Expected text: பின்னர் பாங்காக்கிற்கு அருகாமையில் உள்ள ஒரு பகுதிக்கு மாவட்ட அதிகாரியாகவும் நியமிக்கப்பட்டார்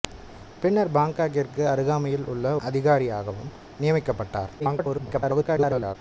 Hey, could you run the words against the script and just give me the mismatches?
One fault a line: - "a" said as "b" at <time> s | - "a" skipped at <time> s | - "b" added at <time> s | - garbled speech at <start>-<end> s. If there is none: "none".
- "ஒரு பகுதிக்கு மாவட்ட" skipped at 2.5 s
- garbled speech at 4.6-6.0 s